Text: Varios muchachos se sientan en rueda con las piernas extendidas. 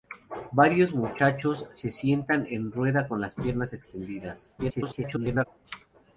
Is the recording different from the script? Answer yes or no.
yes